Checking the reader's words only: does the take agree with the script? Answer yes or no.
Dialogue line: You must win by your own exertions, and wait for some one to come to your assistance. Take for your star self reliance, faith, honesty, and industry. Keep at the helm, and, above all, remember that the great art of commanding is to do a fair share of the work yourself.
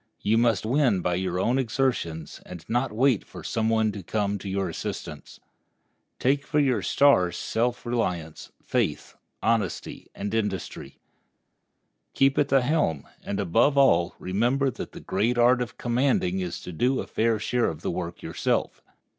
no